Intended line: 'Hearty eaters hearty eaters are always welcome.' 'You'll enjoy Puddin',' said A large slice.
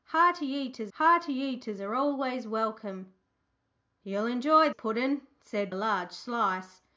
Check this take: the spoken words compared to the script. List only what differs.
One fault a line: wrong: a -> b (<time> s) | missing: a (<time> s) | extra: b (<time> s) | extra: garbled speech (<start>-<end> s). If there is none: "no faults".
no faults